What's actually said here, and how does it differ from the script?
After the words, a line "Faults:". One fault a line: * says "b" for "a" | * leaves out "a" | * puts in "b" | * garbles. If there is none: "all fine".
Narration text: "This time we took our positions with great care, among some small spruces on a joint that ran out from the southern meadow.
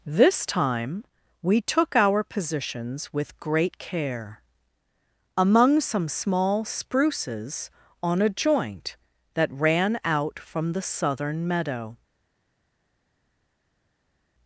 "This time we took our positions with great care, among some small spruces on a joint that ran out from the southern meadow.
Faults:
all fine